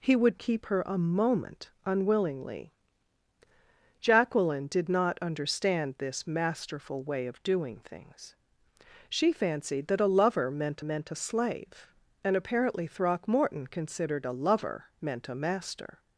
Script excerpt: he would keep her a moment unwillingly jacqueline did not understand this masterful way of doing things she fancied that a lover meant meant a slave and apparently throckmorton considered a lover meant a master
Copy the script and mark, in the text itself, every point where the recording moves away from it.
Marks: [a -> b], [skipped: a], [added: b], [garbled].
he would keep her a moment unwillingly jacqueline did not understand this masterful way of doing things she fancied that a lover meant meant a slave and apparently throckmorton considered a lover meant a master